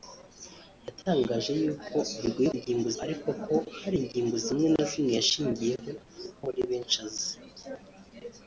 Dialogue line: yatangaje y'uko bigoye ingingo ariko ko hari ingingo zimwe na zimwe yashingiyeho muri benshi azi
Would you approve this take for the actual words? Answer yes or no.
yes